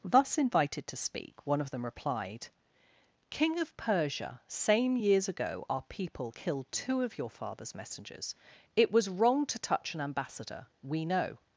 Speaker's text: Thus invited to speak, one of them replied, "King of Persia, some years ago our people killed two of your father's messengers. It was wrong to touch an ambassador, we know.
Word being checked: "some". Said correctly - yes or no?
no